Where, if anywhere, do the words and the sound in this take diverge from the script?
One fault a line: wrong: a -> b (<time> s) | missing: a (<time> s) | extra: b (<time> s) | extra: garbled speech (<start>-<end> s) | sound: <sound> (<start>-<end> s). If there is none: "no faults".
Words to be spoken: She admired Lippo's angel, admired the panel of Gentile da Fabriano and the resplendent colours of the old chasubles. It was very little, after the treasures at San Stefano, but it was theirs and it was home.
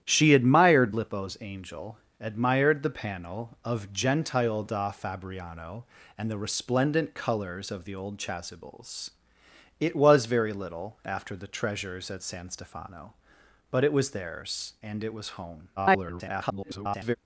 extra: garbled speech (15.8-17.2 s)